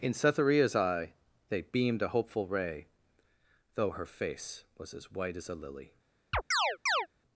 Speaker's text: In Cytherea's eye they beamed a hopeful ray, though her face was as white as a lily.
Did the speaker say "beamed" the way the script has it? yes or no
yes